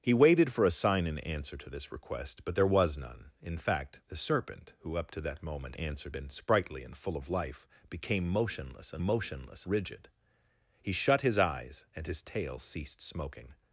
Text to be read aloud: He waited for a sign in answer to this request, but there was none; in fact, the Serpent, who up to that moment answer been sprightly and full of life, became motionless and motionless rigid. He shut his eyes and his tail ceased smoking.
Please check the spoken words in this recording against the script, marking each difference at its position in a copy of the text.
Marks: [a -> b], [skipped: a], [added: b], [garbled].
He waited for a sign in answer to this request, but there was none; in fact, the Serpent, who up to that moment answer been sprightly and full of life, became motionless and motionless rigid. He shut his eyes and his tail ceased smoking.